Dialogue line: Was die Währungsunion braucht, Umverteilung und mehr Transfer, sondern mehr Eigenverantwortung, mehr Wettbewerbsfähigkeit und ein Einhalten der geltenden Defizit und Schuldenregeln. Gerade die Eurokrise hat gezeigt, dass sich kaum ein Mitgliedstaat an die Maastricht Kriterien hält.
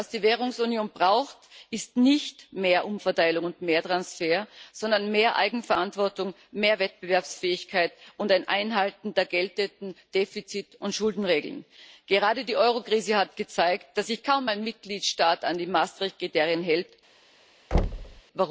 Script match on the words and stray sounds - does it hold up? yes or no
no